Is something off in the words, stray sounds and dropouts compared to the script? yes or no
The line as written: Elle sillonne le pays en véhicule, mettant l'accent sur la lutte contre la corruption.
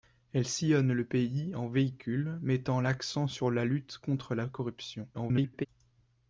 yes